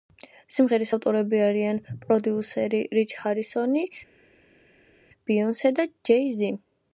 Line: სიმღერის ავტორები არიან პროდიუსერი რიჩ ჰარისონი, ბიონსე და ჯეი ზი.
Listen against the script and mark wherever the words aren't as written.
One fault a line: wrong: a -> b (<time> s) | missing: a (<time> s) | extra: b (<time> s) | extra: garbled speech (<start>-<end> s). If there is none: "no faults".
no faults